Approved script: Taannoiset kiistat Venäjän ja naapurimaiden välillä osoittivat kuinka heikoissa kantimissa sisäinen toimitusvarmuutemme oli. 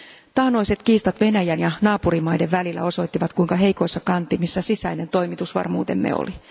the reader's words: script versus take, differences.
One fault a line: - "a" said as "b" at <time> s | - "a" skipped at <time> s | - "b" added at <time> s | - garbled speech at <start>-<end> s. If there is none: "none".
none